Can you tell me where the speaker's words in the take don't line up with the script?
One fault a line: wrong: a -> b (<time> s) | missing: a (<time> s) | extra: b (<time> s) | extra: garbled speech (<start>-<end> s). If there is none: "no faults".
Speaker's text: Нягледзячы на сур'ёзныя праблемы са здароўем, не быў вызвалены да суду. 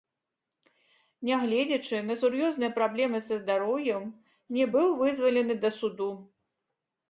no faults